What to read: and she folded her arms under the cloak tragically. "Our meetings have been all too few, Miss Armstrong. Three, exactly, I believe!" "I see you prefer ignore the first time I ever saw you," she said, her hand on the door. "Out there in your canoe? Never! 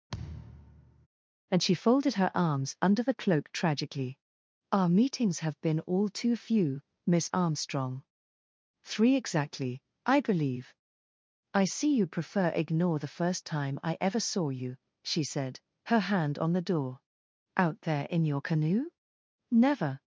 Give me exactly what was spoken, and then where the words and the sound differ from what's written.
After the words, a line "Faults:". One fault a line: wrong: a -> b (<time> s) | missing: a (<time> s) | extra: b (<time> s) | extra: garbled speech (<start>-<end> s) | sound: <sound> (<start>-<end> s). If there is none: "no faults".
and she folded her arms under the cloak tragically. "Our meetings have been all too few, Miss Armstrong. Three, exactly, I believe!" "I see you prefer ignore the first time I ever saw you," she said, her hand on the door. "Out there in your canoe? Never!
Faults:
sound: thud (0.1-1.1 s)